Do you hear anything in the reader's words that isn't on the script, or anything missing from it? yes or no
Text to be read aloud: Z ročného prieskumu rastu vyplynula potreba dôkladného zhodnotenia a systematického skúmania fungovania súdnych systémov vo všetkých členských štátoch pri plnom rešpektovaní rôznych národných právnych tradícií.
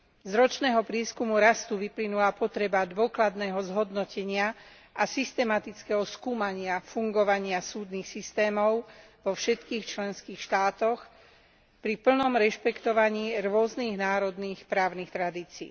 no